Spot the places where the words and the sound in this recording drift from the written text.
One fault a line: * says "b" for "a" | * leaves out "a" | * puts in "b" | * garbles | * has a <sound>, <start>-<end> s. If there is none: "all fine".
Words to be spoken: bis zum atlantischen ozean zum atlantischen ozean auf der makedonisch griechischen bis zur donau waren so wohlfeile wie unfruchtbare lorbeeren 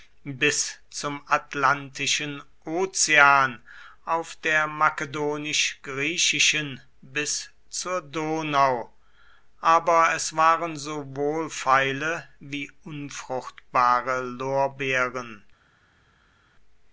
* leaves out "zum atlantischen ozean"
* puts in "aber es"